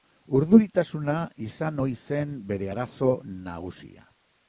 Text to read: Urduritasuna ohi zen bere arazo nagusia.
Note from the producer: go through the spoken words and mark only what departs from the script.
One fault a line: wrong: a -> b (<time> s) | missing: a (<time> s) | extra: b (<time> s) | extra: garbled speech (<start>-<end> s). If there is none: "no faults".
extra: izan (1.5 s)